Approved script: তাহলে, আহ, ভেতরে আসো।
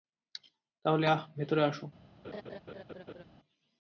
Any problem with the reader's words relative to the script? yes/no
no